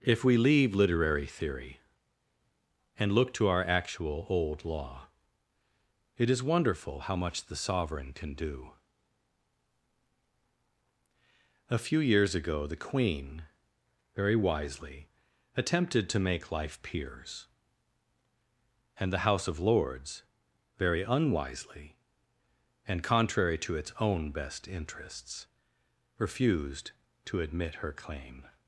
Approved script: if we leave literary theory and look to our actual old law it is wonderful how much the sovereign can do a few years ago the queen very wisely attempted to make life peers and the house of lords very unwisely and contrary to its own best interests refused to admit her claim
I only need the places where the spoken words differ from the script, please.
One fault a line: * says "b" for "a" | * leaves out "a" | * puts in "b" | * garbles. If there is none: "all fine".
all fine